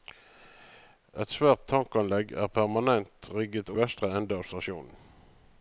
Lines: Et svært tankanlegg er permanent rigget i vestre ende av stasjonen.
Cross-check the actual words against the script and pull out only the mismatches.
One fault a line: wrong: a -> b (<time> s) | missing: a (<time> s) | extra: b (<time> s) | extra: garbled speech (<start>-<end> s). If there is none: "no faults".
no faults